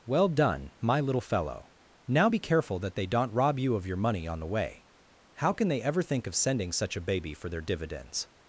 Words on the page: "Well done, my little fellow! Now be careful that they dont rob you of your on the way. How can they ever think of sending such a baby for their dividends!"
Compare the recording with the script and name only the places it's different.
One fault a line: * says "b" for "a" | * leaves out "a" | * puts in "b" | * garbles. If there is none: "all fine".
* puts in "money"